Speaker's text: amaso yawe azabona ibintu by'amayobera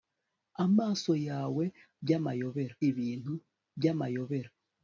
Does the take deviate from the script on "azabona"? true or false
true